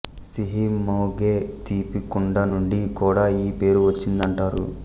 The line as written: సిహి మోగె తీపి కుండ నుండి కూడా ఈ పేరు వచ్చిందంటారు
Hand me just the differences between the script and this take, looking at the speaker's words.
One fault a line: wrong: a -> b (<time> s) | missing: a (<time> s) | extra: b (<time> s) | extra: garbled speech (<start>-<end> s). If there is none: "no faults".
no faults